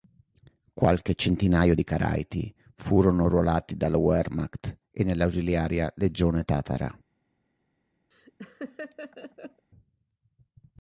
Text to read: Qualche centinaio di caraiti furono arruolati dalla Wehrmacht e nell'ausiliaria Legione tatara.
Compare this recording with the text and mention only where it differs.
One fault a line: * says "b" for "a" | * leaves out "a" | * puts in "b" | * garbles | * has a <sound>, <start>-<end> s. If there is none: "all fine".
* has a laugh, 8.1-9.7 s